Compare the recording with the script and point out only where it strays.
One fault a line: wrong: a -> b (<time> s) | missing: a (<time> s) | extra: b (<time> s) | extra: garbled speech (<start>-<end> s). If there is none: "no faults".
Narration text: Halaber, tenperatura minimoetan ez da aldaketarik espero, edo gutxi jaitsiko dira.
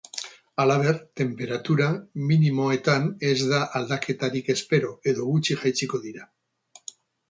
no faults